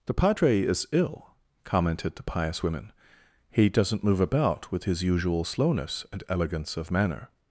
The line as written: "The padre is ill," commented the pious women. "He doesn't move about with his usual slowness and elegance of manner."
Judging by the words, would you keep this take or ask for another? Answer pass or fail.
pass